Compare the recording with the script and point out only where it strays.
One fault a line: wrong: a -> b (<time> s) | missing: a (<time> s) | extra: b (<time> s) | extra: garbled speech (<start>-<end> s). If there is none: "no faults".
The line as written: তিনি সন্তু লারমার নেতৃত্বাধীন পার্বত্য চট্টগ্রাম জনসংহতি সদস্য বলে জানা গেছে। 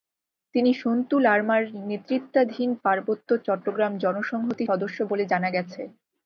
no faults